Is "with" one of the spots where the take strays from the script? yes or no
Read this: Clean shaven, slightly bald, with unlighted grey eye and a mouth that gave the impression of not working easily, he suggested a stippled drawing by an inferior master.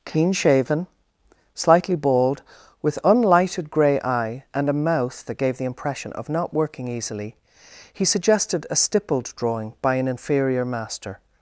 no